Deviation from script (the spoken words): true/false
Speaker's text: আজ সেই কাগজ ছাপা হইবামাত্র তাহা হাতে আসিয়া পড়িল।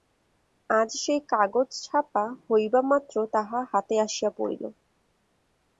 false